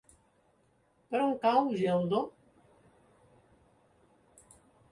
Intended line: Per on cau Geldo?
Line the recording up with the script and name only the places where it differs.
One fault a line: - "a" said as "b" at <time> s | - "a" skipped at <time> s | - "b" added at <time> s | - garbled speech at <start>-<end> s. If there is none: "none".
none